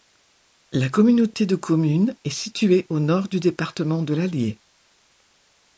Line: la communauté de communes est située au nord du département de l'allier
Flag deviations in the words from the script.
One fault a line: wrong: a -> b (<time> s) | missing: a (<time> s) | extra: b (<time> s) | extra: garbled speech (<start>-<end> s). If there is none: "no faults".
no faults